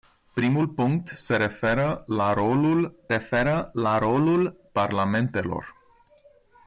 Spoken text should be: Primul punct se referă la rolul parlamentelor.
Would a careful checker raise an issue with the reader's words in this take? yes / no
yes